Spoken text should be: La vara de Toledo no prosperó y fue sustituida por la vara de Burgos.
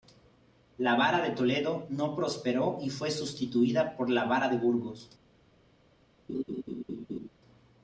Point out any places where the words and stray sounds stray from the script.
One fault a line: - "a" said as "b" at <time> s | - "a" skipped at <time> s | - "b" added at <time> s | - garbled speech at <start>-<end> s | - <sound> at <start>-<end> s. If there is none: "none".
- laugh at 6.3-7.3 s